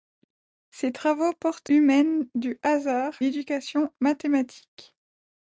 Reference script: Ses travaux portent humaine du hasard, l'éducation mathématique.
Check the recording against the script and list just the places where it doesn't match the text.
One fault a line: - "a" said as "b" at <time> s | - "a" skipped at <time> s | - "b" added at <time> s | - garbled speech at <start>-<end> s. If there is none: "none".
none